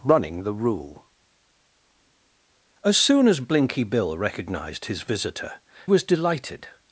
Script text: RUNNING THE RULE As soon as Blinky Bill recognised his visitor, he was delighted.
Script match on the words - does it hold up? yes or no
no